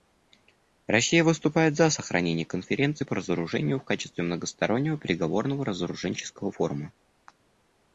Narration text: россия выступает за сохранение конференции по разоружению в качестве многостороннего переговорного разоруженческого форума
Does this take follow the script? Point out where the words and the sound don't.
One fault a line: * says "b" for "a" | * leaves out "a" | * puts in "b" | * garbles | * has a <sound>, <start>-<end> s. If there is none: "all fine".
all fine